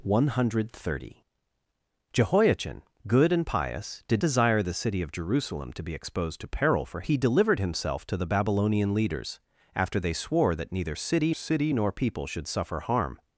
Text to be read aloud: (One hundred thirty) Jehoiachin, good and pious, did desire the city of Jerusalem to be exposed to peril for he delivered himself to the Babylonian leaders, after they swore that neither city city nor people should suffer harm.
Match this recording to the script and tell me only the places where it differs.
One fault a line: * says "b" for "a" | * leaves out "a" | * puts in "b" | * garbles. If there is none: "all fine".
all fine